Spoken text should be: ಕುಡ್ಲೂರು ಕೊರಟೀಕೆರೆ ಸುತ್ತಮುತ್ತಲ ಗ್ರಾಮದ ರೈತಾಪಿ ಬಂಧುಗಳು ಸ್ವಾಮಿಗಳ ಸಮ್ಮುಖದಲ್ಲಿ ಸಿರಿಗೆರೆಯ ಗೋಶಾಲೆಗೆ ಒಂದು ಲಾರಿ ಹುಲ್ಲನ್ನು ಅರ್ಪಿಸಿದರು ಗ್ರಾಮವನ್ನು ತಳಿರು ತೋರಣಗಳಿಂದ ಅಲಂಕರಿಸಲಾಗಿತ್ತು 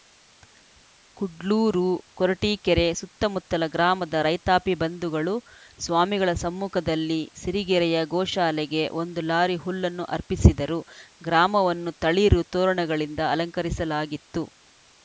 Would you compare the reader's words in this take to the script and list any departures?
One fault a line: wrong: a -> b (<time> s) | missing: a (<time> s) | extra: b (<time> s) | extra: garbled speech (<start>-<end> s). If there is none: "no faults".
no faults